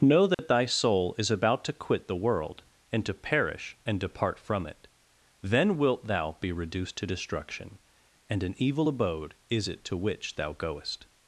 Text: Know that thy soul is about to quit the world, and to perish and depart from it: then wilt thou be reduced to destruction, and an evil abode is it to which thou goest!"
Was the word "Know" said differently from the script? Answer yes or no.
no